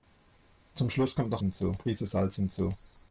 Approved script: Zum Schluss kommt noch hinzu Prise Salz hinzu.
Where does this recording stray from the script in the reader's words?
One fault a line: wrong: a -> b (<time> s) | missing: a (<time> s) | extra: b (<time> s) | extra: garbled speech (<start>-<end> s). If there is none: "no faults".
no faults